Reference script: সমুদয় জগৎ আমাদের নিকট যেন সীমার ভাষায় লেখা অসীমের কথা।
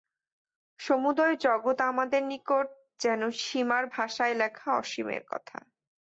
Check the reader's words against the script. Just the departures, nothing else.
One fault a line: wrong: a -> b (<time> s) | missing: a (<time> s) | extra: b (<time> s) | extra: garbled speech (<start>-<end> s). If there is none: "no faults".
no faults